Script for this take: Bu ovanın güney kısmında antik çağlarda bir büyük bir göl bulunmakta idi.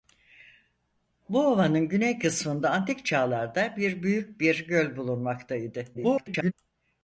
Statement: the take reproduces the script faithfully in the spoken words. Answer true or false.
false